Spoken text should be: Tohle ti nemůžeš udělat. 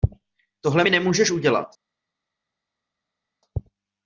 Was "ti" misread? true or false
true